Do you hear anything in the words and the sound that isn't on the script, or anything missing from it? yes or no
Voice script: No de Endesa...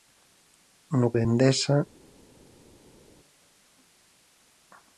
no